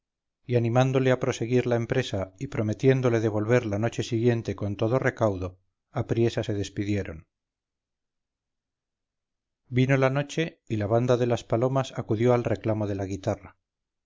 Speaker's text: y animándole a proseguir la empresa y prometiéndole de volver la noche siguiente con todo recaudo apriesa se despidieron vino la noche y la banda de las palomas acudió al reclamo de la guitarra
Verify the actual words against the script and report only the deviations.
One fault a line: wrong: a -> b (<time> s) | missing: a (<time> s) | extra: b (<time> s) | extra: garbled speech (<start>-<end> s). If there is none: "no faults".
no faults